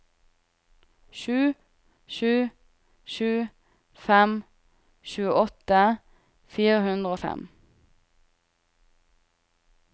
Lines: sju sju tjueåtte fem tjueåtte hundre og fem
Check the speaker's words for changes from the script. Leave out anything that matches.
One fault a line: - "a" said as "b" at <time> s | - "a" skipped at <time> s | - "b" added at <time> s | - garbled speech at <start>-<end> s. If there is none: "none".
- "tjueåtte" said as "sju" at 3.1 s
- "fire" added at 6.5 s